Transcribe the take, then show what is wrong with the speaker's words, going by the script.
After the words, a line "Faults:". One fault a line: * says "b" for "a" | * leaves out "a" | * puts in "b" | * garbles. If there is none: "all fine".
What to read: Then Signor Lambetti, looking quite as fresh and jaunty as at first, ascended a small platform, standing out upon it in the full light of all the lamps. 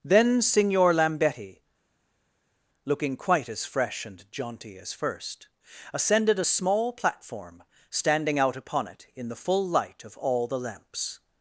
Then Signor Lambetti, looking quite as fresh and jaunty as first, ascended a small platform, standing out upon it in the full light of all the lamps.
Faults:
* leaves out "at"